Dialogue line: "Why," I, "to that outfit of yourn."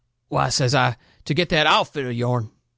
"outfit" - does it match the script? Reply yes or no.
yes